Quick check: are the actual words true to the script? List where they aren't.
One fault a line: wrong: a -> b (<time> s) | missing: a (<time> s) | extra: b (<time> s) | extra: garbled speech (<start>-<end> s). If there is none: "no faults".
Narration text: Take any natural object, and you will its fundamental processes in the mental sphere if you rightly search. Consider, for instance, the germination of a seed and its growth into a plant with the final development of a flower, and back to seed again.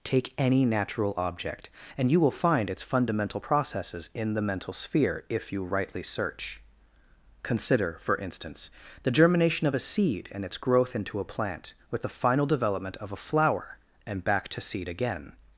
extra: find (2.3 s)